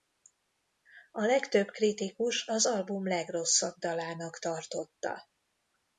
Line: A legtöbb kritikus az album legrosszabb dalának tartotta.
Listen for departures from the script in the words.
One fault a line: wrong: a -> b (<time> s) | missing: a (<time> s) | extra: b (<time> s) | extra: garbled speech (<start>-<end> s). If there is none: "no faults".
no faults